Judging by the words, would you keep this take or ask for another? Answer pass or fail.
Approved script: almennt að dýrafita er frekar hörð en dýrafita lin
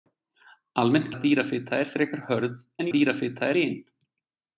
pass